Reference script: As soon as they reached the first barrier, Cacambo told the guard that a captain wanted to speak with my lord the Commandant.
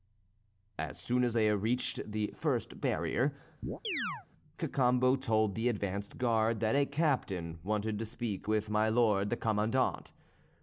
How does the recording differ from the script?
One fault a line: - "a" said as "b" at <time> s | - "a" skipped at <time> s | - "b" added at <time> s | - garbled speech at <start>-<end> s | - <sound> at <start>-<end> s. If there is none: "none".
- chirp at 3.6-4.3 s
- "advanced" added at 5.7 s